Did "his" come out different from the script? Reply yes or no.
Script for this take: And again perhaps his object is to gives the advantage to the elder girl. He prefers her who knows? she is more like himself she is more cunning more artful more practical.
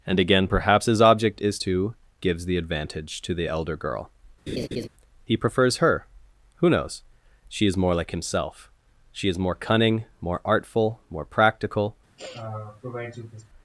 no